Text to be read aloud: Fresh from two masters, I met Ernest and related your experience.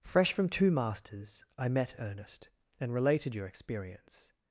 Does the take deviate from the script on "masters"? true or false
false